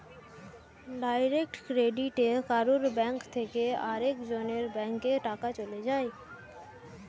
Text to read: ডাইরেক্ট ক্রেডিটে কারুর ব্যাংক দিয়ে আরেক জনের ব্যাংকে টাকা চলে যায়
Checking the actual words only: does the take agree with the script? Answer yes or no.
no